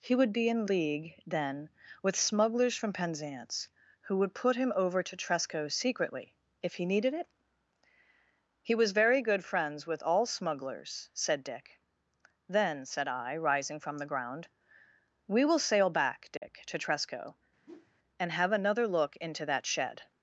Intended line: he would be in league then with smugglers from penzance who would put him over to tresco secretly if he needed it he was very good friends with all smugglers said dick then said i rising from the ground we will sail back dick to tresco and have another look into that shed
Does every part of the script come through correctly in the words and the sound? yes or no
no